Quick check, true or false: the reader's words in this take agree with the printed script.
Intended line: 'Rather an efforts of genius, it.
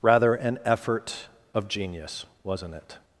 false